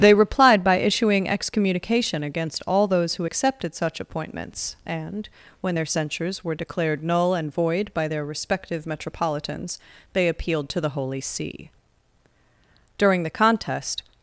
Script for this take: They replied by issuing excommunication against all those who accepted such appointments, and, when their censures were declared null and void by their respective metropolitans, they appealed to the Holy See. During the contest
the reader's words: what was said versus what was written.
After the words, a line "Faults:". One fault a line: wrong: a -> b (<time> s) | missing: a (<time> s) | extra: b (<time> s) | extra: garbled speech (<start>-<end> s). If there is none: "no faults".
They replied by issuing excommunication against all those who accepted such appointments, and, when their censures were declared null and void by their respective metropolitans, they appealed to the Holy See. During the contest
Faults:
no faults